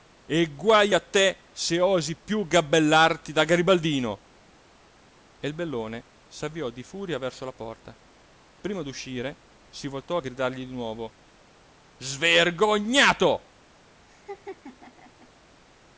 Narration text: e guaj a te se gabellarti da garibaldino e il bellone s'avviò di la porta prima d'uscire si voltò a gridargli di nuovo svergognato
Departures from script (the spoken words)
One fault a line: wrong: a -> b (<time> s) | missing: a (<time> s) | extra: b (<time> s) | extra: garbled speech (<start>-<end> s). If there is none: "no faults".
extra: osi piú (1.8 s)
extra: furia verso (6.8 s)